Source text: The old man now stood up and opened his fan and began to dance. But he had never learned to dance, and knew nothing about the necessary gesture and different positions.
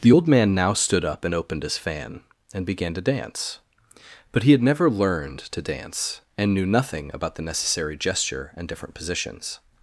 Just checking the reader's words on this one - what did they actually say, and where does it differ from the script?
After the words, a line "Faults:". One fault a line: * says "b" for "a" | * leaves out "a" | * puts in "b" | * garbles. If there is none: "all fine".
The old man now stood up and opened his fan and began to dance. But he had never learned to dance, and knew nothing about the necessary gesture and different positions.
Faults:
all fine